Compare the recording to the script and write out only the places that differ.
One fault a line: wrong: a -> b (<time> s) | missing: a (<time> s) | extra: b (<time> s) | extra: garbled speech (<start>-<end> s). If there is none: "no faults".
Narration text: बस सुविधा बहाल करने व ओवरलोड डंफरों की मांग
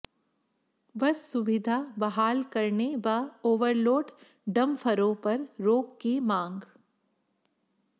extra: पर रोक (5.1 s)